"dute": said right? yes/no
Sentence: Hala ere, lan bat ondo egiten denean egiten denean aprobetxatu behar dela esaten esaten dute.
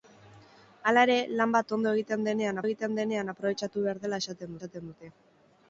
yes